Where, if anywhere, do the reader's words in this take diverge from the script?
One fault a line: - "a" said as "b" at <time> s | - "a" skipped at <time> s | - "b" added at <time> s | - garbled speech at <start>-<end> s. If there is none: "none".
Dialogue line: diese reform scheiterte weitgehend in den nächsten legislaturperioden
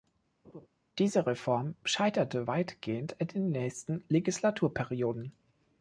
none